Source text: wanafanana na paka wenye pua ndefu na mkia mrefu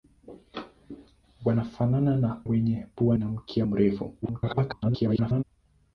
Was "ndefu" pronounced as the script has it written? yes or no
no